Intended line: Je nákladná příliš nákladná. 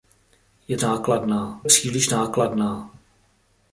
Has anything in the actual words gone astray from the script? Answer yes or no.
no